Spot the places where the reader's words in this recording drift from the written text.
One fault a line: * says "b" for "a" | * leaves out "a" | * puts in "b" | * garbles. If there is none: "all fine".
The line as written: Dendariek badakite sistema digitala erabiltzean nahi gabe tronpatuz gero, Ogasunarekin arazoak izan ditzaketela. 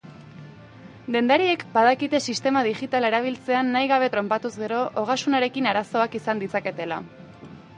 all fine